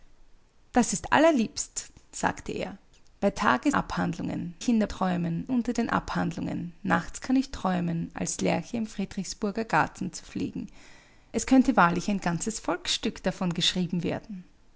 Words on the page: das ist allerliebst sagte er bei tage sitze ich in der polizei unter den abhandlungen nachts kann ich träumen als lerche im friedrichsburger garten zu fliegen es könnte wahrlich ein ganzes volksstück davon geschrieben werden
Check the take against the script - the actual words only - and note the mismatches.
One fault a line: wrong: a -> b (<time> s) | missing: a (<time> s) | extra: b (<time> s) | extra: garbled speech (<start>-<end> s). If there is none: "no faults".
wrong: sitze -> abhandlungen (3.7 s)
wrong: polizei -> träumen (4.9 s)